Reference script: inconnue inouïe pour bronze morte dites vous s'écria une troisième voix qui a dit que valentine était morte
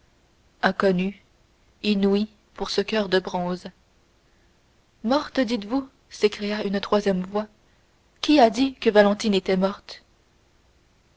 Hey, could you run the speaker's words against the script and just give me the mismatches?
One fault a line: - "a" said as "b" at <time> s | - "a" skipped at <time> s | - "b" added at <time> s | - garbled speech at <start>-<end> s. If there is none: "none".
- "ce coeur de" added at 2.7 s